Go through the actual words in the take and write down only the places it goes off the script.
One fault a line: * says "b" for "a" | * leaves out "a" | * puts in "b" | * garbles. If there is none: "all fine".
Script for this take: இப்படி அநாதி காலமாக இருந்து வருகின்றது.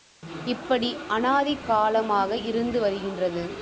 all fine